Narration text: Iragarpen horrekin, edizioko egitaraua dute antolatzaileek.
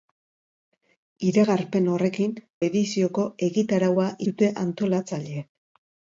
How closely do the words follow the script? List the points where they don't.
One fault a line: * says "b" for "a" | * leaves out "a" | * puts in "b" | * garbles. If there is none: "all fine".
all fine